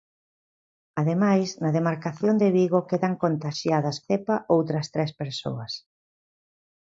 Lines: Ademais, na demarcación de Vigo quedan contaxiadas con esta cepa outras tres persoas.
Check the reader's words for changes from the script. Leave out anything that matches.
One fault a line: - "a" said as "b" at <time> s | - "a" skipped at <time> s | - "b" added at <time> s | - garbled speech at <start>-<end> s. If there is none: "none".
- "con esta" skipped at 4.0 s